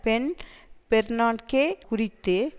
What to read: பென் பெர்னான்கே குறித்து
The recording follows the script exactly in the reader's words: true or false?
true